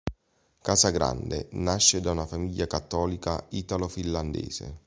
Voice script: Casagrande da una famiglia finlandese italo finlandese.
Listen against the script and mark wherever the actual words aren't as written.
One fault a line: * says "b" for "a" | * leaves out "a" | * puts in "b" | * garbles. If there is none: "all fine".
* puts in "nasce"
* says "cattolica" for "finlandese"